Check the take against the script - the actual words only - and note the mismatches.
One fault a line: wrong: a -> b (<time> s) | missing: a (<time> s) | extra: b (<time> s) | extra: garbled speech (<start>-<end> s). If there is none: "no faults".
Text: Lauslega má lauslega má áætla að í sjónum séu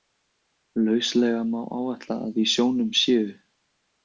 missing: lauslega má (1.6 s)